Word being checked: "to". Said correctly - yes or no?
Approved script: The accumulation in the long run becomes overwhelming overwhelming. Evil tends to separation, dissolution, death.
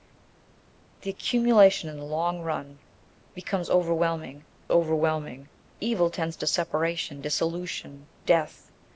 yes